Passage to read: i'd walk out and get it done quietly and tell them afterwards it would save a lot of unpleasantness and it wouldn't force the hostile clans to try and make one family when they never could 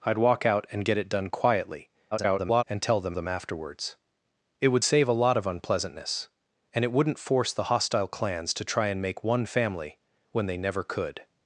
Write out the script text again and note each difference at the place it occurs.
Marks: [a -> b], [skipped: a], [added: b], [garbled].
i'd walk out and get it done quietly [garbled] and tell them [added: them] afterwards it would save a lot of unpleasantness and it wouldn't force the hostile clans to try and make one family when they never could